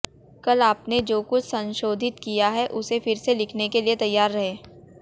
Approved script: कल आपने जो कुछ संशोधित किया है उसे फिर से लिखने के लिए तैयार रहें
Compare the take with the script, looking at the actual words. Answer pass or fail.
pass